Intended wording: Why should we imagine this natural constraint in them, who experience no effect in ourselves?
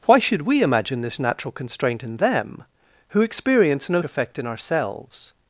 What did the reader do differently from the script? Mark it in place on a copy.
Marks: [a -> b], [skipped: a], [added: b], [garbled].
Why should we imagine this natural constraint in them, who experience no effect in ourselves?